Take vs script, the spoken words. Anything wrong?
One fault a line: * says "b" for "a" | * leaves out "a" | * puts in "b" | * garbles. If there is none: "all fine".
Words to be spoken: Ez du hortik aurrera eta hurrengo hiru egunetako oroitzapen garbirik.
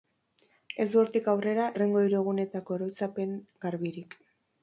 * leaves out "eta"